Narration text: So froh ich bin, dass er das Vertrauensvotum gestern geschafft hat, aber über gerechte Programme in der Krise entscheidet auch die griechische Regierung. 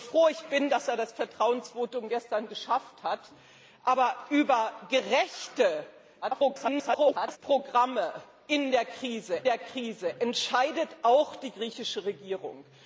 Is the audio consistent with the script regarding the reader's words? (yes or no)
no